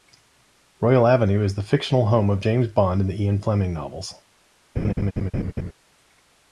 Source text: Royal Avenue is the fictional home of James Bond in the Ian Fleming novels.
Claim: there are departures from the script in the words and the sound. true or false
true